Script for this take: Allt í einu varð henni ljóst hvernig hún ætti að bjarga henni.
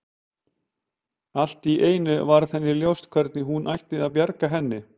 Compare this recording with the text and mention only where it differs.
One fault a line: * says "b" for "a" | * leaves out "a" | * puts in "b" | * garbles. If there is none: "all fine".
all fine